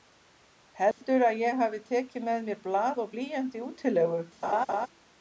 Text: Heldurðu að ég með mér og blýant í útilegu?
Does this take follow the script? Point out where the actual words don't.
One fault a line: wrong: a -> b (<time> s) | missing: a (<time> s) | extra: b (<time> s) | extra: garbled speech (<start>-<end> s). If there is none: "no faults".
extra: hafi tekið (1.6 s)
extra: blað (2.6 s)